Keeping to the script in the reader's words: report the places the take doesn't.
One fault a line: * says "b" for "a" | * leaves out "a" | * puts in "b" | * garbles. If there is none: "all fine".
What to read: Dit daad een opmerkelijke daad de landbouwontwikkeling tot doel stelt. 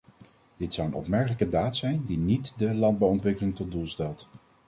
* says "zou" for "daad"
* puts in "zijn die niet"